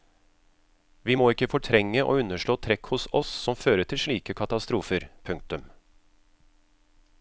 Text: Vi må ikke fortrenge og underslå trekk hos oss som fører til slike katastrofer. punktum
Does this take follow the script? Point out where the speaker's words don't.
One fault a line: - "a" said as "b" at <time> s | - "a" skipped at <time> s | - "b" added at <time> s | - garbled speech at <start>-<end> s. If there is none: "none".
none